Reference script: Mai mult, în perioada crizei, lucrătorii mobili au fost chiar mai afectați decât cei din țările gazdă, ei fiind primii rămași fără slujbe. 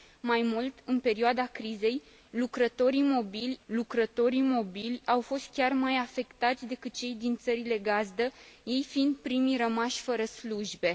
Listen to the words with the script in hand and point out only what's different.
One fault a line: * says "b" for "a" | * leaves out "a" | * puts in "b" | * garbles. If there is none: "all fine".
* puts in "lucrătorii mobili"